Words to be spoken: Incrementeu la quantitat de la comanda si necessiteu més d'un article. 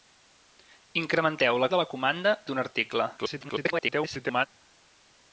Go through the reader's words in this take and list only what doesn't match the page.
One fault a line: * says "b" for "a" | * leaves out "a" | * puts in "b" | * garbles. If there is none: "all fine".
* leaves out "quantitat"
* leaves out "si necessiteu més"
* garbles